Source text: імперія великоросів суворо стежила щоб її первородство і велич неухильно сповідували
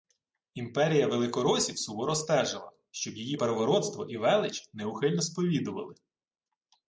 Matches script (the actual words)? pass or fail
pass